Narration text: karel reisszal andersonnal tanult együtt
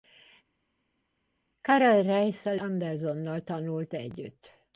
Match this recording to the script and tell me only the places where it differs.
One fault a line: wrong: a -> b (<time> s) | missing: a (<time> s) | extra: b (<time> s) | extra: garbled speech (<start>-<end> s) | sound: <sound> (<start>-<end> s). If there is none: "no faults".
no faults